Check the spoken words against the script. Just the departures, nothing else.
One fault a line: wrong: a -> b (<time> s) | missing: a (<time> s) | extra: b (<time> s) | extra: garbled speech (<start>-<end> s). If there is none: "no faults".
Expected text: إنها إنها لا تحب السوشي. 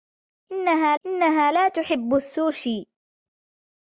no faults